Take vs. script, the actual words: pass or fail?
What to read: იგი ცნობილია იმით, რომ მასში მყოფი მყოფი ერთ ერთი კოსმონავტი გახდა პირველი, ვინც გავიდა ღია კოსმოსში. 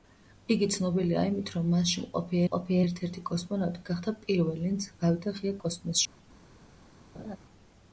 pass